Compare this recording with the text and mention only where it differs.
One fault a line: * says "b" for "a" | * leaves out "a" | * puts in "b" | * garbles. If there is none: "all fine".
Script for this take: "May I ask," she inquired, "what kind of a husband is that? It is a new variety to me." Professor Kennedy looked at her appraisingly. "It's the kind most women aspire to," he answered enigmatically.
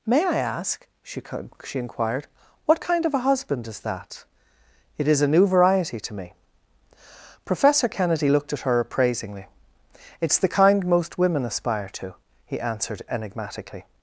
* puts in "she"